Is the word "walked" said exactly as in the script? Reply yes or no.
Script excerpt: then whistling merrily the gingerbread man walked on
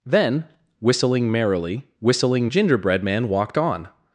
yes